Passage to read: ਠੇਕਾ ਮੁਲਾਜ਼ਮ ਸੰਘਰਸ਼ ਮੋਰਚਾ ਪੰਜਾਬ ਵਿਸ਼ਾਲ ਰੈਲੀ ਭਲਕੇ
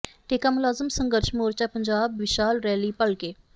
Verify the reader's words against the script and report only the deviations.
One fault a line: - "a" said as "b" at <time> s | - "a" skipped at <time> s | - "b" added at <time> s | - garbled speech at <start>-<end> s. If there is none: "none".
none